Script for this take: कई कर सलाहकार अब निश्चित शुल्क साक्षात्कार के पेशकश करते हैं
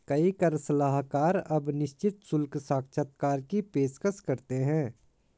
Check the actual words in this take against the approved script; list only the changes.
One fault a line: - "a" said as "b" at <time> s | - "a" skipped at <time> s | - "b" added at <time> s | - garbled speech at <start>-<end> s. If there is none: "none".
- "के" said as "की" at 3.4 s